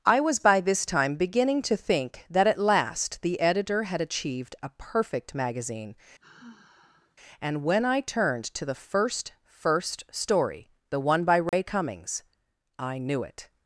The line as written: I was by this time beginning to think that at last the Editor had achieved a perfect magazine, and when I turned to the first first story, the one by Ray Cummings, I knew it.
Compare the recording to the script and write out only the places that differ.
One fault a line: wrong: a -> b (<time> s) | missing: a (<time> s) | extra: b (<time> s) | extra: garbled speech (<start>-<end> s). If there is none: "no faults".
no faults